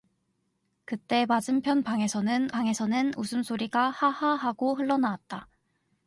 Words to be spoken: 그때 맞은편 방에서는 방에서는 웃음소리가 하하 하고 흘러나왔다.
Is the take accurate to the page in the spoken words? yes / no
yes